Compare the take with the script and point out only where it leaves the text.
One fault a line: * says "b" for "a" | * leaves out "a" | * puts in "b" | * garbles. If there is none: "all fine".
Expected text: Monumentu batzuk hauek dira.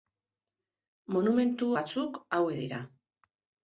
all fine